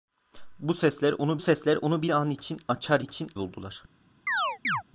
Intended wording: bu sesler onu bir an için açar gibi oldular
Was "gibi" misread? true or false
true